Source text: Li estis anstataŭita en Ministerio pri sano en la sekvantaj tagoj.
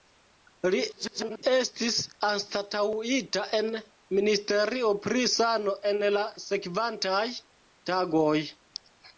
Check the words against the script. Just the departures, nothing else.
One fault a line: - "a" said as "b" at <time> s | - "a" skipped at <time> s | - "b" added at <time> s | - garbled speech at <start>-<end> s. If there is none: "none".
- garbled speech at 0.9-1.4 s